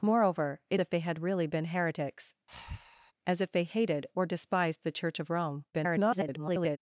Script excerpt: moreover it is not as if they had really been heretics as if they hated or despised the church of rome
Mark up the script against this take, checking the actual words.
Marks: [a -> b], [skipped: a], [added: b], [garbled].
moreover it [skipped: is not as] if they had really been heretics as if they hated or despised the church of rome [garbled]